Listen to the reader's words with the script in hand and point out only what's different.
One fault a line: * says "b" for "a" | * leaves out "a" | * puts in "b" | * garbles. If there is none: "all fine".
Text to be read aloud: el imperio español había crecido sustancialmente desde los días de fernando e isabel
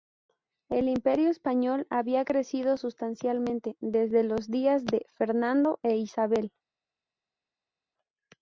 all fine